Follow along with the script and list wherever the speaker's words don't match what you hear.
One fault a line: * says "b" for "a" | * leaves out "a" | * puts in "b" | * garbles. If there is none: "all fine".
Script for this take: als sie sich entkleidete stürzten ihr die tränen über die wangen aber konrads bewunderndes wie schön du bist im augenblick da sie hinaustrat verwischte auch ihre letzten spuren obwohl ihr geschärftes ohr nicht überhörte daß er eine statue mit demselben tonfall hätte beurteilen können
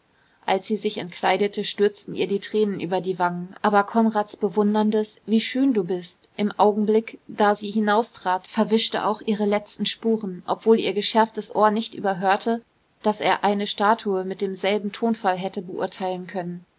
all fine